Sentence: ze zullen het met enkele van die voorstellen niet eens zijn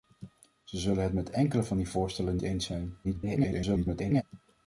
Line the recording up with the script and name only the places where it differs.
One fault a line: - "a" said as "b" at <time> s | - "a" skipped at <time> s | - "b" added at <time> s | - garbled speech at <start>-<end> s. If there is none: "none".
- "niet" skipped at 2.4 s
- garbled speech at 3.0-4.2 s